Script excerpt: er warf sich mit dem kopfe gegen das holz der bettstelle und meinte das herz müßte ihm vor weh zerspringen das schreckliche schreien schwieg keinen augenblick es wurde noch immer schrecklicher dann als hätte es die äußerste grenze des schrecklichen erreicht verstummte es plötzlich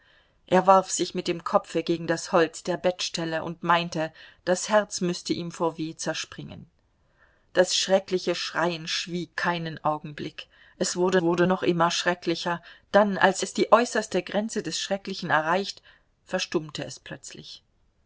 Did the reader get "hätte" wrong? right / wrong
wrong